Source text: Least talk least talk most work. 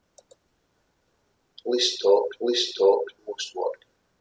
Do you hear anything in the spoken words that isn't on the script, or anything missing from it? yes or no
no